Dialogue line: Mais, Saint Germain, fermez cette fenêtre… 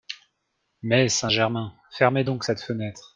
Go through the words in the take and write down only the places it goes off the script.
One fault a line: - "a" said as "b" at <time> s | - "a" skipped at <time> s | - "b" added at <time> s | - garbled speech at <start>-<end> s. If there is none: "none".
- "donc" added at 2.2 s